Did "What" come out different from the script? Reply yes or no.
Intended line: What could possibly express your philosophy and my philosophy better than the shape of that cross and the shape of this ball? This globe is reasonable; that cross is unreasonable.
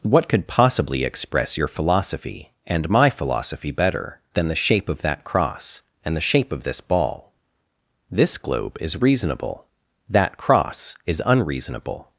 no